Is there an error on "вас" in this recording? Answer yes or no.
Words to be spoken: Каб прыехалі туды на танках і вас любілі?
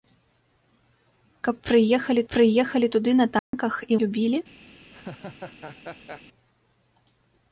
yes